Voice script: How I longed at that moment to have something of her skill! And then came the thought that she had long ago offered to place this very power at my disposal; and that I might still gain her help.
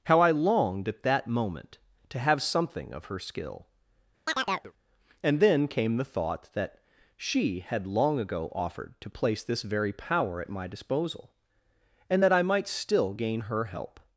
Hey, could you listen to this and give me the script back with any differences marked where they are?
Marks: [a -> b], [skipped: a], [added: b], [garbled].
How I longed at that moment to have something of her skill! And then came the thought that she had long ago offered to place this very power at my disposal; and that I might still gain her help.